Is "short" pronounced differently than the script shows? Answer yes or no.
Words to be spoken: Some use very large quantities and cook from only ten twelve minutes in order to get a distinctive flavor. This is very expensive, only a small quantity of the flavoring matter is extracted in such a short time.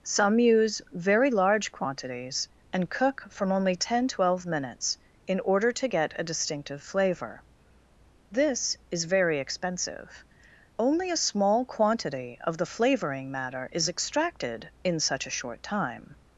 no